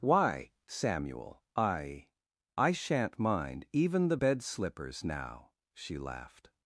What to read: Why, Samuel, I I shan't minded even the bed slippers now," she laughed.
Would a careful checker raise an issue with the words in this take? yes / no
yes